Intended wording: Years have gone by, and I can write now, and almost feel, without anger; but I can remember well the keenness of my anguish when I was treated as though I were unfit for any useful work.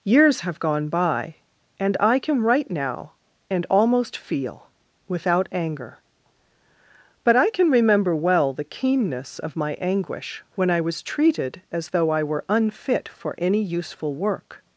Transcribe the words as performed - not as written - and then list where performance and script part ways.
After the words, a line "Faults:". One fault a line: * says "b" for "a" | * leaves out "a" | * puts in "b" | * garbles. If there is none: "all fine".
Years have gone by, and I can write now, and almost feel, without anger; but I can remember well the keenness of my anguish when I was treated as though I were unfit for any useful work.
Faults:
all fine